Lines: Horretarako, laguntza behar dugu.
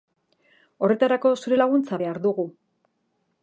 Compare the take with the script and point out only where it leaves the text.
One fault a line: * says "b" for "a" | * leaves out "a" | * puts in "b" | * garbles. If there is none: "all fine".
* puts in "zure"